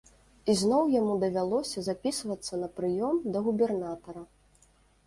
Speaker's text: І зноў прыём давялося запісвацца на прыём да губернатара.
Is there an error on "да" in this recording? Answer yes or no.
no